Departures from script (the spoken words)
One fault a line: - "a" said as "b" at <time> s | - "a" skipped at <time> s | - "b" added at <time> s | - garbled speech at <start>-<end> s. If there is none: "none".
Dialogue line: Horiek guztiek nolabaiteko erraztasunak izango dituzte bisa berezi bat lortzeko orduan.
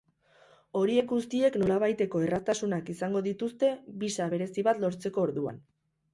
none